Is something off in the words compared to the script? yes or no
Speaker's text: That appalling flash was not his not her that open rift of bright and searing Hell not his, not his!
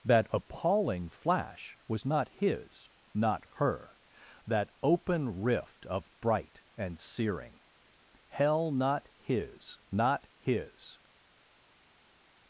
no